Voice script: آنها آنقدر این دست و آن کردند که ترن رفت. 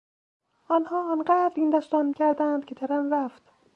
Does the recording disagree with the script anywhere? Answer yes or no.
no